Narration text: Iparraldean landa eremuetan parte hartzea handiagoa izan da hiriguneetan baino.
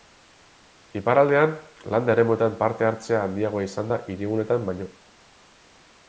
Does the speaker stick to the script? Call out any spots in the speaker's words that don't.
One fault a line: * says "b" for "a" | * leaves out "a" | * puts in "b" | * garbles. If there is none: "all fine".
all fine